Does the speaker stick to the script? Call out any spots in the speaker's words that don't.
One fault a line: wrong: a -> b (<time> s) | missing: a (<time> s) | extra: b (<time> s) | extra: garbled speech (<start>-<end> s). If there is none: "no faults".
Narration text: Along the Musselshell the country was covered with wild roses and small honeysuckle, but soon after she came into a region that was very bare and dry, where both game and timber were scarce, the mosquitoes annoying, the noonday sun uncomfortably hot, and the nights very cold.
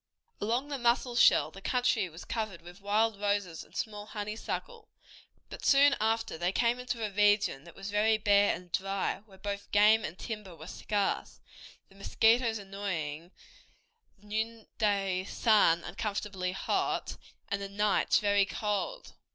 wrong: she -> they (6.4 s)